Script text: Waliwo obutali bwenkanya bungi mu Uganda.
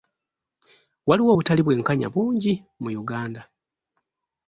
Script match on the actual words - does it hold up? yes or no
yes